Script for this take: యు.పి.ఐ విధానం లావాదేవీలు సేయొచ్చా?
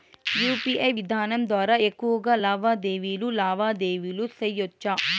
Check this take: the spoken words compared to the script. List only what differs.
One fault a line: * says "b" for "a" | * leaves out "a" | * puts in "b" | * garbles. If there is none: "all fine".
* puts in "ద్వారా ఎక్కువగా లావాదేవీలు"